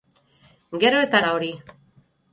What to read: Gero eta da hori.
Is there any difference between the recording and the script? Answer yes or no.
no